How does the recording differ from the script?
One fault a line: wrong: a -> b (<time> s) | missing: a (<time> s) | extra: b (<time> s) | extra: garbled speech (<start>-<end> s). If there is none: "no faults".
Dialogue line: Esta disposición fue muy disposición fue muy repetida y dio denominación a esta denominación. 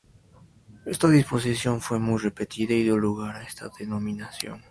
missing: disposición fue muy (2.2 s)
wrong: denominación -> lugar (3.0 s)